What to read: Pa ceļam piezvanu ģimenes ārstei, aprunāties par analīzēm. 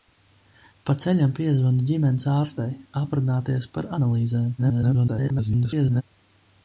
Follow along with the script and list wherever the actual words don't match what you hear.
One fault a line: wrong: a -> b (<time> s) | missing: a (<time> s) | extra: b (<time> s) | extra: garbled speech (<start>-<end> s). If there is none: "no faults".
extra: garbled speech (4.6-6.0 s)